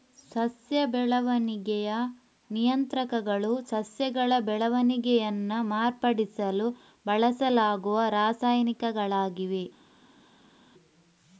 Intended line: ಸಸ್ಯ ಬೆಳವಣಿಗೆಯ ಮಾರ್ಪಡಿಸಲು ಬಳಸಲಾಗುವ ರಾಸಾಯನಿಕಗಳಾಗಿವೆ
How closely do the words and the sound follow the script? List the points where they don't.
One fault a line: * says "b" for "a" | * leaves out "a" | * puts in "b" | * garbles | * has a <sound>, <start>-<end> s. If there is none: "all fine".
* puts in "ನಿಯಂತ್ರಕಗಳು ಸಸ್ಯಗಳ ಬೆಳವಣಿಗೆಯನ್ನ"